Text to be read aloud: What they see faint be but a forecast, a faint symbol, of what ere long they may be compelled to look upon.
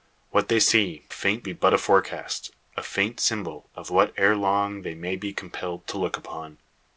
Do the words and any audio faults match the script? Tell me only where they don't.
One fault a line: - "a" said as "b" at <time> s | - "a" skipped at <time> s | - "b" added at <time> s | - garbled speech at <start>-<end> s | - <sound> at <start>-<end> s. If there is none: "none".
none